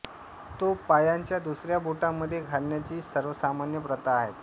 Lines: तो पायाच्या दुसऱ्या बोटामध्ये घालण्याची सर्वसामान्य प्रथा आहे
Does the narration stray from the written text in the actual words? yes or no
no